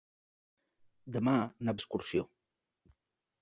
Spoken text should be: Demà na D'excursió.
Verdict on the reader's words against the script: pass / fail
pass